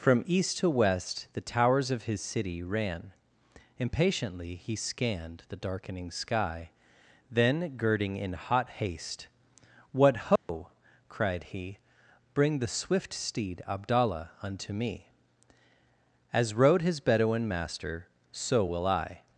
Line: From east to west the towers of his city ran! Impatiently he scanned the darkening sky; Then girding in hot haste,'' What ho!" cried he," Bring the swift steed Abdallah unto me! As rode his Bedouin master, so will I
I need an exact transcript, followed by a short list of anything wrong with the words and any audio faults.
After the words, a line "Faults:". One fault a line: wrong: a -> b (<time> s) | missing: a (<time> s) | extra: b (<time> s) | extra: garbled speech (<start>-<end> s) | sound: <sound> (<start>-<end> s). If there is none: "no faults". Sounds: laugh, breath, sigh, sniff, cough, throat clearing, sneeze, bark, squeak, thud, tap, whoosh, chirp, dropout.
From east to west the towers of his city ran! Impatiently he scanned the darkening sky; Then girding in hot haste,'' What ho!" cried he," Bring the swift steed Abdallah unto me! As rode his Bedouin master, so will I
Faults:
sound: dropout (10.4-10.5 s)